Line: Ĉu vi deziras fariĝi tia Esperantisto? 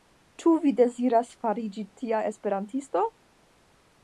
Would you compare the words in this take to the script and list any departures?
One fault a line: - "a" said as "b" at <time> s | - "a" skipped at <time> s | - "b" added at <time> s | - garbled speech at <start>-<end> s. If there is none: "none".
none